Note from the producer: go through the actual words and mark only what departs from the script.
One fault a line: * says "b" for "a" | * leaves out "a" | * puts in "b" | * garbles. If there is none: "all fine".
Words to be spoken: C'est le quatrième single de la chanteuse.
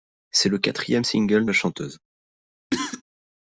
* leaves out "de"